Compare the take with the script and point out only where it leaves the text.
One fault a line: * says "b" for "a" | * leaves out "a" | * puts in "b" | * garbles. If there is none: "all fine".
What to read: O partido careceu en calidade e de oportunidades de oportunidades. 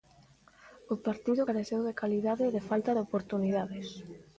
* says "de" for "en"
* says "falta" for "oportunidades"